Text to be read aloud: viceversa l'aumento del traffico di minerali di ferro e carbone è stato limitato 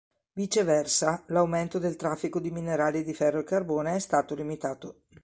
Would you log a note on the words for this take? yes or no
no